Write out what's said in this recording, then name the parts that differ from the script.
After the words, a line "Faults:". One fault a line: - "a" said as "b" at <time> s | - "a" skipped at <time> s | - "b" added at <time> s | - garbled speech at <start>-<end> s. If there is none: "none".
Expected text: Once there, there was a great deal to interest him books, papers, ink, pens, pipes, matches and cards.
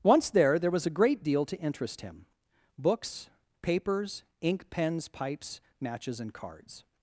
Once there, there was a great deal to interest him books, papers, ink, pens, pipes, matches and cards.
Faults:
none